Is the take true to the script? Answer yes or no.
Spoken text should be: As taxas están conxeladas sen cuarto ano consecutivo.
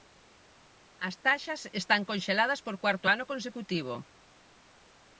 no